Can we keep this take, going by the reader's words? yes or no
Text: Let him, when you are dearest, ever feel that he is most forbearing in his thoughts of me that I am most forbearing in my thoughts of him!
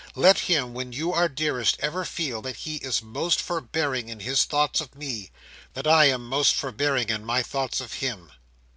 yes